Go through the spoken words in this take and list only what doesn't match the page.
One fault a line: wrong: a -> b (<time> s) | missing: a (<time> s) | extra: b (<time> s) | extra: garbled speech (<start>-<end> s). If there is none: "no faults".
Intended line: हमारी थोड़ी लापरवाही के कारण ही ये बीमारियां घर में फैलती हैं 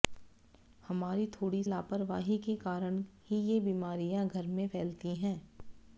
no faults